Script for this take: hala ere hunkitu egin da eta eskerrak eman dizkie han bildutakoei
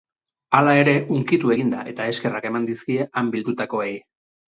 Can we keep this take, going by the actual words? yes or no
yes